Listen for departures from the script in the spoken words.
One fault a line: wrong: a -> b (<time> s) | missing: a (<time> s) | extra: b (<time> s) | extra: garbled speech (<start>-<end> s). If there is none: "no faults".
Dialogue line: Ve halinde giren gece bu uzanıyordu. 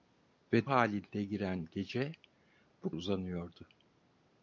no faults